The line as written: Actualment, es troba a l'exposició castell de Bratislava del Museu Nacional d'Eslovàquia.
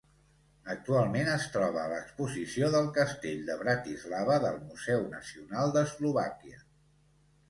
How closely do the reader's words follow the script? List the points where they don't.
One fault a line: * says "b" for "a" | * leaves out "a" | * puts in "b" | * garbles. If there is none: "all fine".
* puts in "del"